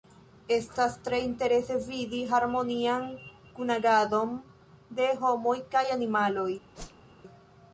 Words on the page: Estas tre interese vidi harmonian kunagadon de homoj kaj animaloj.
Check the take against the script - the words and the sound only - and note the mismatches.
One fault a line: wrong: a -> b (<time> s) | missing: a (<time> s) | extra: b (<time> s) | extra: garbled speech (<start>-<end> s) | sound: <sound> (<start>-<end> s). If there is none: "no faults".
sound: whoosh (6.7-7.1 s)